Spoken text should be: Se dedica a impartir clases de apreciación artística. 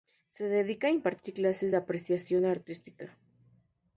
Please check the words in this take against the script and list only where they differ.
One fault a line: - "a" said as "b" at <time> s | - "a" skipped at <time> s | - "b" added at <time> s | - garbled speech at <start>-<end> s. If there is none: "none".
none